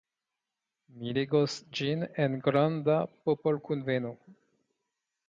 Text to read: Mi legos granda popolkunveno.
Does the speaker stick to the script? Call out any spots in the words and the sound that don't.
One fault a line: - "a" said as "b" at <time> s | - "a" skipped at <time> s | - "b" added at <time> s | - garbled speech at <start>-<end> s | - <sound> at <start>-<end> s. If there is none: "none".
- "ĝin en" added at 1.8 s